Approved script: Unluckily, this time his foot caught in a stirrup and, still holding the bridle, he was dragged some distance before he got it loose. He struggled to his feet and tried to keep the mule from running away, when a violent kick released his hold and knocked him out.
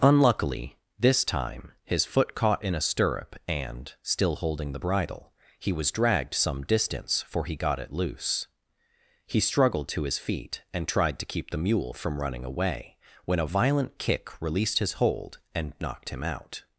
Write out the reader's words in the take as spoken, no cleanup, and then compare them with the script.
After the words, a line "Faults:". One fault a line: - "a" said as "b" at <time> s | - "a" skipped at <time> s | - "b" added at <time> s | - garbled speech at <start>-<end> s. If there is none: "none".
Unluckily, this time his foot caught in a stirrup and, still holding the bridle, he was dragged some distance for he got it loose. He struggled to his feet and tried to keep the mule from running away, when a violent kick released his hold and knocked him out.
Faults:
- "before" said as "for" at 7.2 s